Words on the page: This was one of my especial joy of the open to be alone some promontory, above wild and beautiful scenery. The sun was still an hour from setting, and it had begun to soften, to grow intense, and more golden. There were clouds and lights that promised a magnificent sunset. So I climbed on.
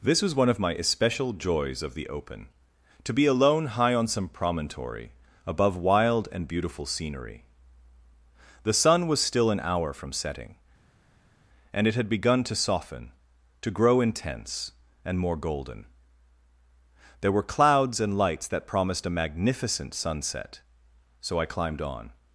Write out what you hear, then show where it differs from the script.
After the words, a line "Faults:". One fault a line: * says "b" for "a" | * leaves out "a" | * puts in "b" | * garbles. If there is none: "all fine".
This was one of my especial joys of the open to be alone high on some promontory, above wild and beautiful scenery. The sun was still an hour from setting, and it had begun to soften, to grow intense, and more golden. There were clouds and lights that promised a magnificent sunset. So I climbed on.
Faults:
* says "joys" for "joy"
* puts in "high on"